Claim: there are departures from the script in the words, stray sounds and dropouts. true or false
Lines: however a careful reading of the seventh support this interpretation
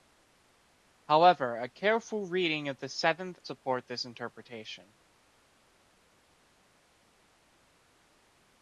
false